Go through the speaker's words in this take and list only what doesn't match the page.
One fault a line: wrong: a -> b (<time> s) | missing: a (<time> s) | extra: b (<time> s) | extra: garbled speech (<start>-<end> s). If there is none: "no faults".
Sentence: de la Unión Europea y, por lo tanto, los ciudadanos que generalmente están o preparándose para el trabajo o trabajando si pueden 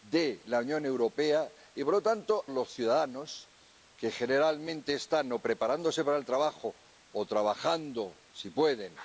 no faults